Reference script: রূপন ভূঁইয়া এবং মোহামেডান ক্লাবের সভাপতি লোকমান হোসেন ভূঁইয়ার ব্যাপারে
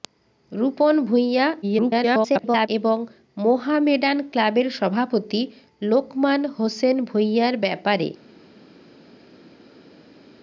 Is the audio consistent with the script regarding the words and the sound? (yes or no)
no